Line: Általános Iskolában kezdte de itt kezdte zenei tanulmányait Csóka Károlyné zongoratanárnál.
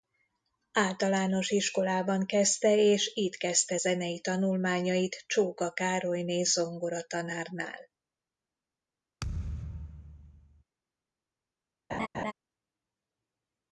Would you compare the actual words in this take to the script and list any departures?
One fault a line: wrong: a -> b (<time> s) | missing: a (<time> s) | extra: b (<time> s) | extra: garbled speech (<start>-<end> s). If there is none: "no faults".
wrong: de -> és (2.8 s)